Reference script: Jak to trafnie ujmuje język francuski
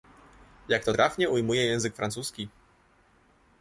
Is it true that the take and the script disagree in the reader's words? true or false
false